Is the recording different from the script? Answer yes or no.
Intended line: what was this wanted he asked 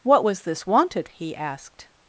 no